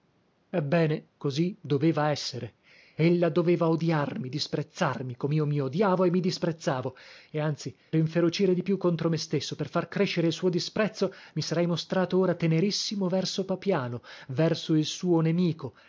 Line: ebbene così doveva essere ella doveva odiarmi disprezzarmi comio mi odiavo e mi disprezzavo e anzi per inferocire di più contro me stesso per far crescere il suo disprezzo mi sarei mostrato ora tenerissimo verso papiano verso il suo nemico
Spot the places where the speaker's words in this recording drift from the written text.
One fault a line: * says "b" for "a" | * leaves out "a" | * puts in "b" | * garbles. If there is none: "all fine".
* leaves out "per"